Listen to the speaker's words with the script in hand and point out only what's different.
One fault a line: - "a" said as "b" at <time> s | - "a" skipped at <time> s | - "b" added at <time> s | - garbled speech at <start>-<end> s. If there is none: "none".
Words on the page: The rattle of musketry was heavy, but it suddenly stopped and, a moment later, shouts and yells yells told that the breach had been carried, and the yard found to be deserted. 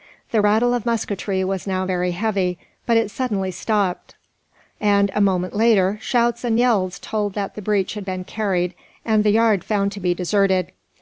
- "now very" added at 1.7 s
- "yells" skipped at 7.0 s